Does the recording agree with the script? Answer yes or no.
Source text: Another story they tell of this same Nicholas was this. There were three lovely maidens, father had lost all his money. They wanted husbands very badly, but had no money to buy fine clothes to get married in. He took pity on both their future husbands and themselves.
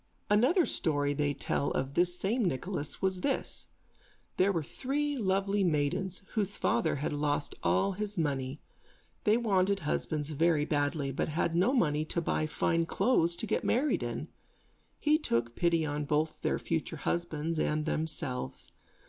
no